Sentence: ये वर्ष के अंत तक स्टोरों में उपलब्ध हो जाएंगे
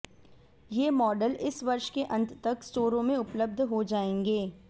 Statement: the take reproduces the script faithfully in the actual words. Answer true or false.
false